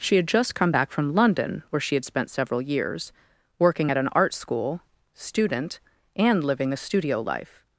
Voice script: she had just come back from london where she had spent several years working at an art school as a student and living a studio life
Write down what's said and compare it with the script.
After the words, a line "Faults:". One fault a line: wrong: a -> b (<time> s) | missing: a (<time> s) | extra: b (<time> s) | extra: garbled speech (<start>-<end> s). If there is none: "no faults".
she had just come back from london where she had spent several years working at an art school student and living a studio life
Faults:
missing: as a (4.8 s)